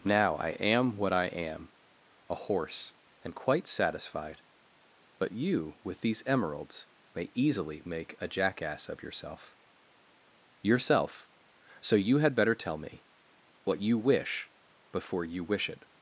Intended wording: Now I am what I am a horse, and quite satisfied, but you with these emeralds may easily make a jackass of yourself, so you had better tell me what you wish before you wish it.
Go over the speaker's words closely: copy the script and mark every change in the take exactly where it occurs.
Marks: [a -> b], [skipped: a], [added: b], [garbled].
Now I am what I am a horse, and quite satisfied, but you with these emeralds may easily make a jackass of yourself, [added: yourself] so you had better tell me what you wish before you wish it.